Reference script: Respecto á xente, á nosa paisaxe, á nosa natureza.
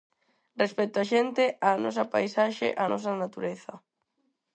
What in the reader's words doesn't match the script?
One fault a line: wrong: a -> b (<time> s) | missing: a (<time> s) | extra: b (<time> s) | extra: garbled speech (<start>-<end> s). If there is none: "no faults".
no faults